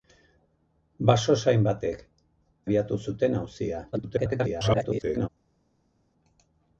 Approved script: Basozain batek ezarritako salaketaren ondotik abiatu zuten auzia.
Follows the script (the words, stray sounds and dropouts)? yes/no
no